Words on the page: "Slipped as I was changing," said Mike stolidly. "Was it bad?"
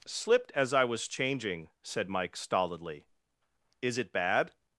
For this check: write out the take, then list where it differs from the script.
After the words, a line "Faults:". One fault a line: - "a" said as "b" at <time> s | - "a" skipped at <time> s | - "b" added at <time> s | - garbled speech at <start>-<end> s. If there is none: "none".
"Slipped as I was changing," said Mike stolidly. "Is it bad?"
Faults:
- "Was" said as "Is" at 3.8 s